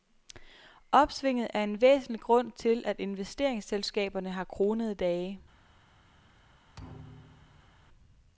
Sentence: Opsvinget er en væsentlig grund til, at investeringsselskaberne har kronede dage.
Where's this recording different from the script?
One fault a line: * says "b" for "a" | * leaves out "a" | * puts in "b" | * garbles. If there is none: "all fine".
all fine